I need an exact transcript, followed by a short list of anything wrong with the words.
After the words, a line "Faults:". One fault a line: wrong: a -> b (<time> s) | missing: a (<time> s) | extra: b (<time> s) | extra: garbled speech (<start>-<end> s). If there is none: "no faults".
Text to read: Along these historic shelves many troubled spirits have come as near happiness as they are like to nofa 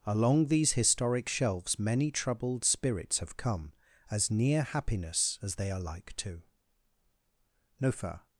Along these historic shelves many troubled spirits have come as near happiness as they are like to nofa
Faults:
no faults